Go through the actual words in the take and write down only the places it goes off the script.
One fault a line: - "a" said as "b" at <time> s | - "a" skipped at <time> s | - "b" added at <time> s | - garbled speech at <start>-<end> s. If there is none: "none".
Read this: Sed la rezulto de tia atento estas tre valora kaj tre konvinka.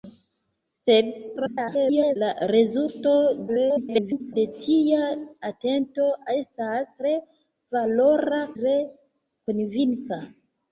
- garbled speech at 1.4-2.2 s
- garbled speech at 3.5-4.3 s
- "kaj" skipped at 8.5 s